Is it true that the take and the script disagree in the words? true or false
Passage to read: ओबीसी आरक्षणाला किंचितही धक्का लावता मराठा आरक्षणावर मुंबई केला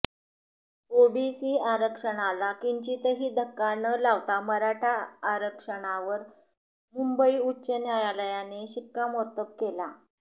true